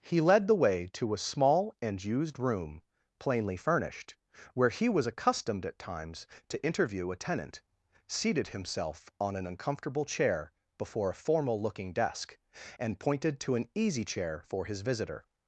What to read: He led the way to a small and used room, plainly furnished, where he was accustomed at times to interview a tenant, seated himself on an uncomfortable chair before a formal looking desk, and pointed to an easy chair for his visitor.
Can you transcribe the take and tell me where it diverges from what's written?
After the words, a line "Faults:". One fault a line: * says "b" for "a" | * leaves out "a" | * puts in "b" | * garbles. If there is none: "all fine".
He led the way to a small and used room, plainly furnished, where he was accustomed at times to interview a tenant, seated himself on an uncomfortable chair before a formal looking desk, and pointed to an easy chair for his visitor.
Faults:
all fine